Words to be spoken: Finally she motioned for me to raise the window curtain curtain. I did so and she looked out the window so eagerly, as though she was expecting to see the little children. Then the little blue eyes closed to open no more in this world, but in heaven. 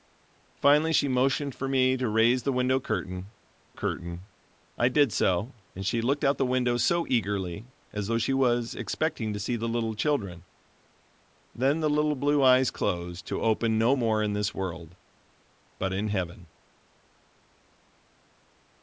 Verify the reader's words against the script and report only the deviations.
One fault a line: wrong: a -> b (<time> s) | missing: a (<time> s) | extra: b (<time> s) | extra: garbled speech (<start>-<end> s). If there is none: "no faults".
no faults